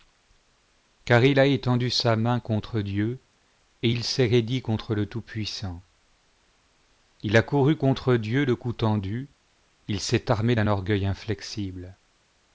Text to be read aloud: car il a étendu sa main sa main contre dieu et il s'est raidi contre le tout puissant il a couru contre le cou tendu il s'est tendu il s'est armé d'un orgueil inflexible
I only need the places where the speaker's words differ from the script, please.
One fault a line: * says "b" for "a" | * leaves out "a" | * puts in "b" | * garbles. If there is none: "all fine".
* leaves out "sa main"
* puts in "dieu"
* leaves out "tendu il s'est"